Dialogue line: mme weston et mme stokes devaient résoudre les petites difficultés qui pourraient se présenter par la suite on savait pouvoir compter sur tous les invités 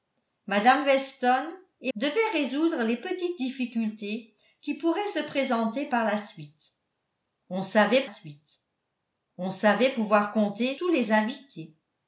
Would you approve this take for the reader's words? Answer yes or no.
no